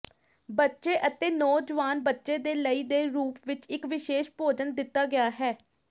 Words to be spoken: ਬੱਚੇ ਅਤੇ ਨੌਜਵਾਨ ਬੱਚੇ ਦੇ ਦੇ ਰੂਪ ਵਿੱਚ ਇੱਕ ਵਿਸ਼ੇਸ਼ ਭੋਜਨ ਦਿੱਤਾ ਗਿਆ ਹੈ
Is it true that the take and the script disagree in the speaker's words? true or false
true